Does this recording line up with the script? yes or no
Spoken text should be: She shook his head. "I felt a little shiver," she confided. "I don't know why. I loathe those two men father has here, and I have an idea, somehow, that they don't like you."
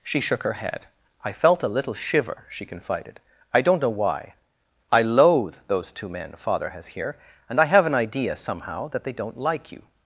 no